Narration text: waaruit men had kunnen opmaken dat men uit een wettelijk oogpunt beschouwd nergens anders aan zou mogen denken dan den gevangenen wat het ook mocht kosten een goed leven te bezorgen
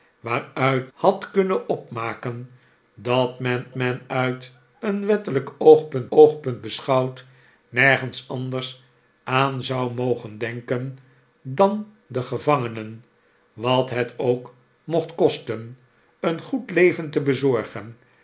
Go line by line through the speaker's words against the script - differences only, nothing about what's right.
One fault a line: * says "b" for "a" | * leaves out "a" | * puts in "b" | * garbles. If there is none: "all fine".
* leaves out "men"
* puts in "men"
* puts in "oogpunt"